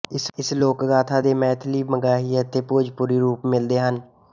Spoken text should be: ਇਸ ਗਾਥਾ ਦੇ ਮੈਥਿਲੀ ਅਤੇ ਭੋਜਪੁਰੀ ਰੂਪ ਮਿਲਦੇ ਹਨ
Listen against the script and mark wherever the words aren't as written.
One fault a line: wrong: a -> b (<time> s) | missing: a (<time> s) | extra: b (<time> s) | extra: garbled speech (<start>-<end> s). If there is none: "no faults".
extra: ਲੋਕ (0.5 s)
extra: ਮਗਹੀ (1.9 s)